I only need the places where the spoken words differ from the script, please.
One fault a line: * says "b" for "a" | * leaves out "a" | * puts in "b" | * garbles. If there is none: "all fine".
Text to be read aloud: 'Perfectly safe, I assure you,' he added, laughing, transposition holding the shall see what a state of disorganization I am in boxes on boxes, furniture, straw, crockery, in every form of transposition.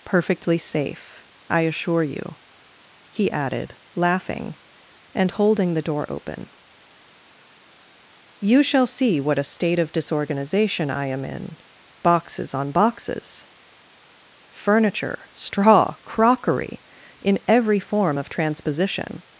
* says "and" for "transposition"
* puts in "door open You"